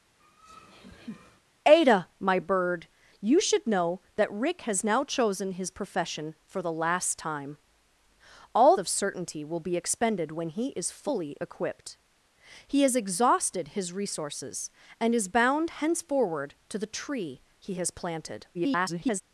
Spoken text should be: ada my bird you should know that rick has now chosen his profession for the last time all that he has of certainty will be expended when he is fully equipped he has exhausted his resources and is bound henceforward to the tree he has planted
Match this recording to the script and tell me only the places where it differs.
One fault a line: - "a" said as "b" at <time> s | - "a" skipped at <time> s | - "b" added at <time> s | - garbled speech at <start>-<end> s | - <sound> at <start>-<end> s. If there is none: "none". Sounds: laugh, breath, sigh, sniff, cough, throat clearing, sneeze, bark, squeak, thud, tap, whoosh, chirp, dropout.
- laugh at 0.2-1.4 s
- "that he has" skipped at 8.8 s
- garbled speech at 18.5-19.2 s